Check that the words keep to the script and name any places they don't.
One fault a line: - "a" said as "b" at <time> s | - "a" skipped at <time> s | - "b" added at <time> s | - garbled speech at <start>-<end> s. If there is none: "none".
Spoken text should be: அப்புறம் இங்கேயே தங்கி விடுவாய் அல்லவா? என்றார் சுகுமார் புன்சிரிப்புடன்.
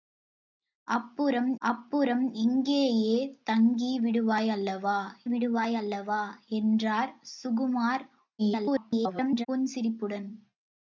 - "அப்புறம்" added at 1.6 s
- "விடுவாய் அல்லவா" added at 5.3 s
- garbled speech at 8.4-9.5 s